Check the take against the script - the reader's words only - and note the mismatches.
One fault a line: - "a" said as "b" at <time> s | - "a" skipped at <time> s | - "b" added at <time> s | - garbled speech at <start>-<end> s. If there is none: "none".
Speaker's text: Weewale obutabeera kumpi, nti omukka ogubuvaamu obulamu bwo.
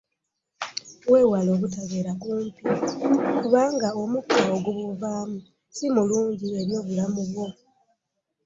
- "nti" said as "kubanga" at 3.4 s
- "si mulungi eri" added at 5.7 s